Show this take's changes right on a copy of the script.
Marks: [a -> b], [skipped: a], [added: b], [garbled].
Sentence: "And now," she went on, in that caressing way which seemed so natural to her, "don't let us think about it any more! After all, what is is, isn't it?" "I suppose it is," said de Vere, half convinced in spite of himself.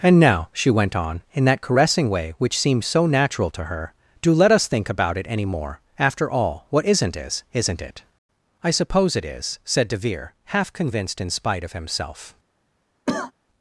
"And now," she went on, in that caressing way which seemed so natural to her, ["don't -> do] let us think about it any more! After all, what [is -> isn't] is, isn't it?" "I suppose it is," said de Vere, half convinced in spite of himself.